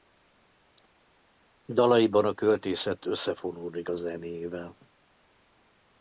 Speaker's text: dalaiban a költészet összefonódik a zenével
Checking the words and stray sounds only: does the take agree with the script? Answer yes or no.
yes